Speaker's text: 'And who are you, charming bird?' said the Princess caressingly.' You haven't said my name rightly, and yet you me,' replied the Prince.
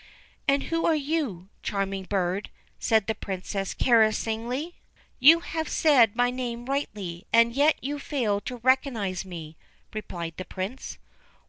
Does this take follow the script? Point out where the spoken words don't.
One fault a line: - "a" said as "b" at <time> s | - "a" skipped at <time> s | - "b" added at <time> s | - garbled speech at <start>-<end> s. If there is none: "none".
- "haven't" said as "have" at 5.4 s
- "fail to recognise" added at 8.0 s